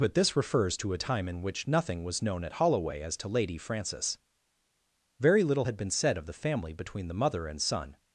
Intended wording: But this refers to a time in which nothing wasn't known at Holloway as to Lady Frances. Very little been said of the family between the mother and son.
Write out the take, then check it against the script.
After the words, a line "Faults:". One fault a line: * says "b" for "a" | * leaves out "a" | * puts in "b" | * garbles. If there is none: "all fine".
But this refers to a time in which nothing was known at Holloway as to Lady Frances. Very little had been said of the family between the mother and son.
Faults:
* says "was" for "wasn't"
* puts in "had"